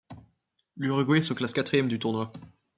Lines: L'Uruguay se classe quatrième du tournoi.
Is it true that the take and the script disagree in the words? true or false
false